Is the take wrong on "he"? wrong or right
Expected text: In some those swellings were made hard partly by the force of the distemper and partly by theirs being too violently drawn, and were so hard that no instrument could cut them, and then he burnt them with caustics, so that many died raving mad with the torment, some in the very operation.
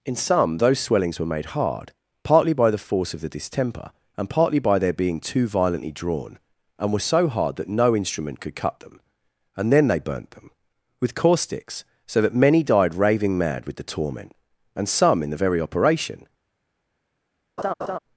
wrong